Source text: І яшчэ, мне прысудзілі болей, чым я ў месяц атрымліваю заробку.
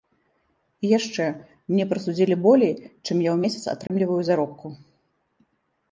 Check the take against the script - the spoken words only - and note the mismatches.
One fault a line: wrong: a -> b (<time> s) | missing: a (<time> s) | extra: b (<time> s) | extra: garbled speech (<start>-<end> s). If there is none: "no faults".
no faults